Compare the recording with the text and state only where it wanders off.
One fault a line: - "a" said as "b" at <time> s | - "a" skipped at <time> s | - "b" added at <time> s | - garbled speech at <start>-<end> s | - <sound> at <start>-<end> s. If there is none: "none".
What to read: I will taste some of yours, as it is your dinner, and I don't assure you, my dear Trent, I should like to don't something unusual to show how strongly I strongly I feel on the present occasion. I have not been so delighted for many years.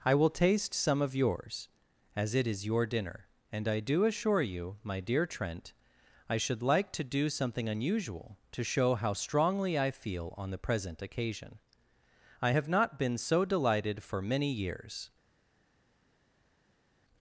- "don't" said as "do" at 3.8 s
- "don't" said as "do" at 7.0 s
- "strongly I" skipped at 9.9 s